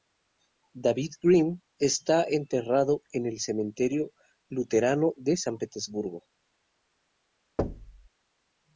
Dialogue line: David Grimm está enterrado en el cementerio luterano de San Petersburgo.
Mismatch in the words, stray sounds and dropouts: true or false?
true